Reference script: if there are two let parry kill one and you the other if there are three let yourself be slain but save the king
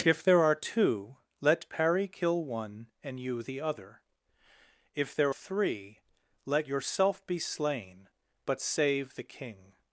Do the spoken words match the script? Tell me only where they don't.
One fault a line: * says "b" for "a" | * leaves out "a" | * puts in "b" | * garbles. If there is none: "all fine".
* leaves out "are"